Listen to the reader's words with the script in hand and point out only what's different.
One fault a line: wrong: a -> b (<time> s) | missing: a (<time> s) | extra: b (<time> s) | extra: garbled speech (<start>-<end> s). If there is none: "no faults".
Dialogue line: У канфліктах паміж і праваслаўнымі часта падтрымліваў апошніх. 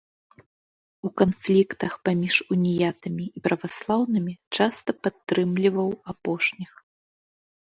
extra: уніятамі (2.5 s)